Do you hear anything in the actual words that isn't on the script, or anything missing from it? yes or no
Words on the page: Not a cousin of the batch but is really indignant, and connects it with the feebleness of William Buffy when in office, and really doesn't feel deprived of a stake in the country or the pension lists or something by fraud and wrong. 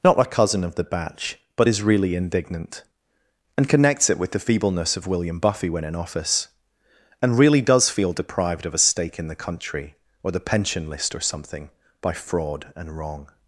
yes